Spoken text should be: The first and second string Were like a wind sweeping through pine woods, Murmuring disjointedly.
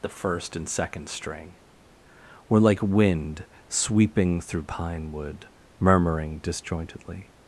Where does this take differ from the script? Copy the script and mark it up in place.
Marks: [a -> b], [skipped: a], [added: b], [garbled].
The first and second string Were like [skipped: a] wind sweeping through pine [woods, -> wood] Murmuring disjointedly.